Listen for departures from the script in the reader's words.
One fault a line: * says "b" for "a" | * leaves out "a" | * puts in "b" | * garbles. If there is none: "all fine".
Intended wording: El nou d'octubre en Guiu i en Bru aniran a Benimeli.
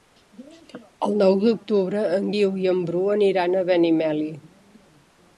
all fine